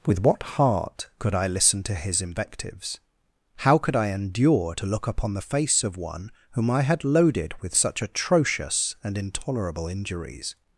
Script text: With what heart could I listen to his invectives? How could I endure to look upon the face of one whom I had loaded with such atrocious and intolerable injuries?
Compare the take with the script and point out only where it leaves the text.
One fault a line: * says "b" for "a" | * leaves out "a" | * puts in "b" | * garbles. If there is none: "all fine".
all fine